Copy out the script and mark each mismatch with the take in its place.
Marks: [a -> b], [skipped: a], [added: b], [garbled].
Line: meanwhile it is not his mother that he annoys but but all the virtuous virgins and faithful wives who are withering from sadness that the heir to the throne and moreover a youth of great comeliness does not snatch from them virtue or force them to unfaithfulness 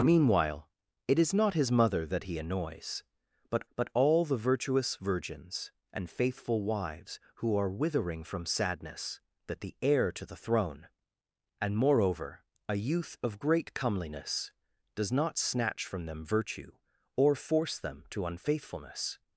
meanwhile it is not his mother that he annoys but but all the virtuous virgins and faithful wives who are withering from sadness that the heir to the throne and moreover a youth of great comeliness does not snatch from them virtue or force them to unfaithfulness